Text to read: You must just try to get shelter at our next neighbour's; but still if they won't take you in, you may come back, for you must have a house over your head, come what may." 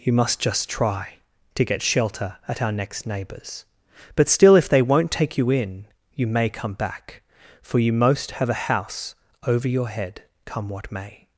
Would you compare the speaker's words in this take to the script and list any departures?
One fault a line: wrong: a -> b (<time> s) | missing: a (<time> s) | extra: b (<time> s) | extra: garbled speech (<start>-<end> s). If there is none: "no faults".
wrong: must -> most (7.9 s)